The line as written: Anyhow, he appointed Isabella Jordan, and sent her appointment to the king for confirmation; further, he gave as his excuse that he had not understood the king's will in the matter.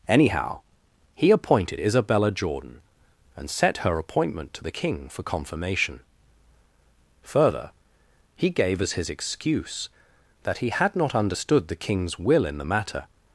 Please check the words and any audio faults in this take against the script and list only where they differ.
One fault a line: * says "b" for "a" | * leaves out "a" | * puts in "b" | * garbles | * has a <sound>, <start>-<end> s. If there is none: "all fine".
* says "set" for "sent"